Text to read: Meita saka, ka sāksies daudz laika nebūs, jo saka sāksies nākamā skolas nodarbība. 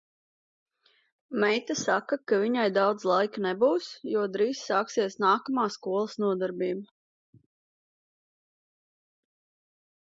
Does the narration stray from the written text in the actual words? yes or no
yes